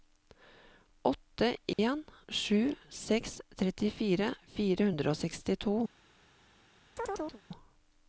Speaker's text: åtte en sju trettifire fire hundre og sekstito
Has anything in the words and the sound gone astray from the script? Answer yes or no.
yes